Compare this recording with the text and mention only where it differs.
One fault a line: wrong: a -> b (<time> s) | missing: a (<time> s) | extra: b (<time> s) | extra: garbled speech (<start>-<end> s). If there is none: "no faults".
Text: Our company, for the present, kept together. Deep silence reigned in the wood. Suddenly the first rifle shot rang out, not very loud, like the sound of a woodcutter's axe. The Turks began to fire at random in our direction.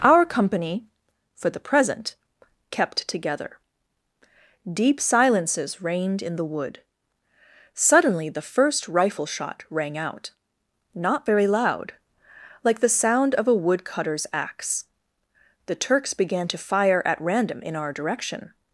wrong: silence -> silences (5.0 s)